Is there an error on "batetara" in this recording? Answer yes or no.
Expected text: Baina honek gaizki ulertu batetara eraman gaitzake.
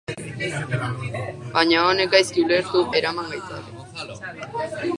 yes